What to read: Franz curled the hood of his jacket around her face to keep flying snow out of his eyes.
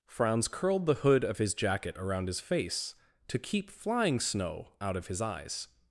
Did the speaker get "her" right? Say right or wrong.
wrong